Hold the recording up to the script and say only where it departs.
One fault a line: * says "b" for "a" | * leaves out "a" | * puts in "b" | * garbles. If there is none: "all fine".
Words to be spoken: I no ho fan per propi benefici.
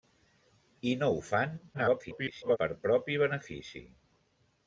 * garbles